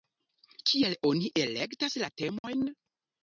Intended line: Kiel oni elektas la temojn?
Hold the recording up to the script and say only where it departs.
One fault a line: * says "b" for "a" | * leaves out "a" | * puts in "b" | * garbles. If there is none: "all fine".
all fine